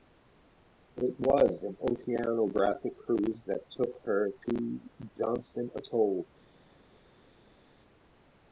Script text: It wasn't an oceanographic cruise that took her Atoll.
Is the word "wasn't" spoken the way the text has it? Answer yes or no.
no